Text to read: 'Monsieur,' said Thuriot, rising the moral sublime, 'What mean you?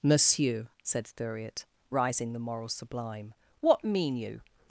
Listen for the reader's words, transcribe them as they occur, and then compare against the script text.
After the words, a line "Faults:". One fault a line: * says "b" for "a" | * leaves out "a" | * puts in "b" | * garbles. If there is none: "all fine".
'Monsieur,' said Thuriot, rising the moral sublime, 'What mean you?
Faults:
all fine